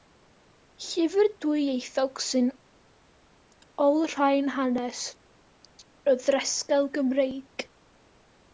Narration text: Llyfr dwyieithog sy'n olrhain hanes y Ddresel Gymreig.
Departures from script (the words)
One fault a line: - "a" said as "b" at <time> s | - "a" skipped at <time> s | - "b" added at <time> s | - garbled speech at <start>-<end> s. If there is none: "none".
none